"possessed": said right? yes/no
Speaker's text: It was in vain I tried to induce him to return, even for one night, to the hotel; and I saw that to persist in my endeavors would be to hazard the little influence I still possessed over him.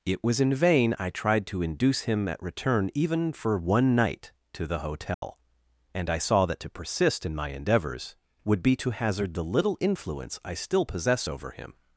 no